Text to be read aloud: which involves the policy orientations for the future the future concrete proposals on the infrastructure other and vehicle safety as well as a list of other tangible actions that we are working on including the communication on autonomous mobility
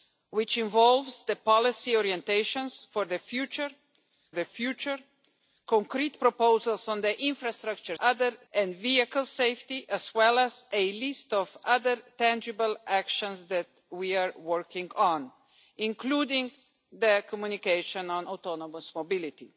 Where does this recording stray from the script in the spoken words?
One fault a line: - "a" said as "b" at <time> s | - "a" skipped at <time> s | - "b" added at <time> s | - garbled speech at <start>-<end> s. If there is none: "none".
none